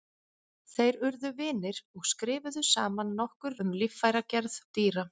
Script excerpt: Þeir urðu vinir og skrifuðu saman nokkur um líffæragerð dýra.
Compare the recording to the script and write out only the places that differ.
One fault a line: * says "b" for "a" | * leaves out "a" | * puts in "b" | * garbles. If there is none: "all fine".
all fine